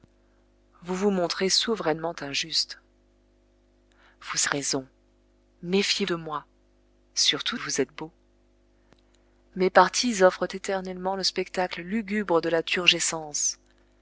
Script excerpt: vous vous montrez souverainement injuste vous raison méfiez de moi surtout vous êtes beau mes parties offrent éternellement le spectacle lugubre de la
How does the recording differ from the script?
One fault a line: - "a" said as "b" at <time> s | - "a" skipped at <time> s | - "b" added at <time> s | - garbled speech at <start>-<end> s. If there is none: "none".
none